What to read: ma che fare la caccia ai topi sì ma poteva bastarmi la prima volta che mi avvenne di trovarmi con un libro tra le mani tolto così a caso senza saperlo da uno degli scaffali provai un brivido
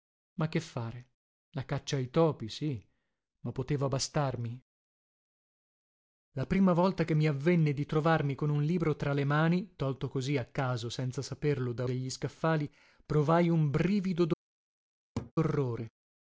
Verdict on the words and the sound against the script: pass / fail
fail